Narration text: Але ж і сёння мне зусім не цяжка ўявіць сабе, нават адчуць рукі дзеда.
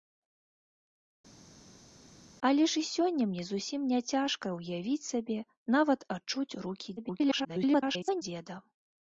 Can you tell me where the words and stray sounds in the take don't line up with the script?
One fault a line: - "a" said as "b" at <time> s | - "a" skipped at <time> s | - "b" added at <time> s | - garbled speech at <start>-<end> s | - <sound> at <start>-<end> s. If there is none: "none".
- garbled speech at 7.0-8.2 s